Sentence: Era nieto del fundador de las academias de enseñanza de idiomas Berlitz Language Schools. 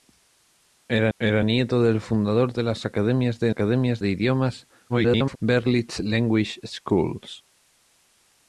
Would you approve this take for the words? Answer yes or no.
no